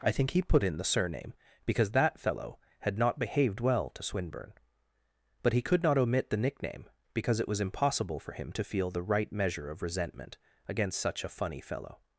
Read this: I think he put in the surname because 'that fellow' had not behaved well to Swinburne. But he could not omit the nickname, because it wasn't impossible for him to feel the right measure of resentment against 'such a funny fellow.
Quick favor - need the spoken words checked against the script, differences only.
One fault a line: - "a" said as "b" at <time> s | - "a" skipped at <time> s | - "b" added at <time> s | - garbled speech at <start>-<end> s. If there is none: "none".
- "wasn't" said as "was" at 7.5 s